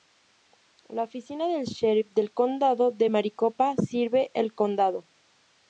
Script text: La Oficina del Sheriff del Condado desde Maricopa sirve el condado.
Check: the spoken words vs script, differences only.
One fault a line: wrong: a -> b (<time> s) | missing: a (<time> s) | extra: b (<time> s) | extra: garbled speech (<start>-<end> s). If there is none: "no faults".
wrong: desde -> de (2.9 s)